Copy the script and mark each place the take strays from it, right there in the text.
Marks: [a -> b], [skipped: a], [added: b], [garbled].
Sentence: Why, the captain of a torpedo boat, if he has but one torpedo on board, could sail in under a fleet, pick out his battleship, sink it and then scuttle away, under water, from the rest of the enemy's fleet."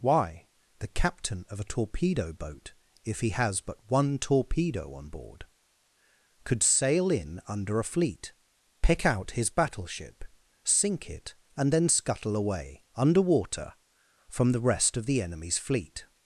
Why, the captain of a torpedo boat, if he has but one torpedo on board, could sail in under a fleet, pick out his battleship, sink it and then scuttle away, under water, from the rest of the enemy's fleet."